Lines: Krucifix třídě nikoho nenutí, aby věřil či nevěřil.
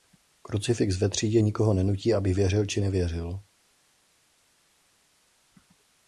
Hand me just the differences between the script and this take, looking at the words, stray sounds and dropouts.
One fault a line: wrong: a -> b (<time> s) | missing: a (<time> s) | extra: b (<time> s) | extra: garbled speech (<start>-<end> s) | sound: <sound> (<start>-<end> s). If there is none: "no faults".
extra: ve (1.0 s)